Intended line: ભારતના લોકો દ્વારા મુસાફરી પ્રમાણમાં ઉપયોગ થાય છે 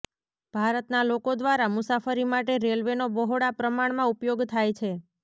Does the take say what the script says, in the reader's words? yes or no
no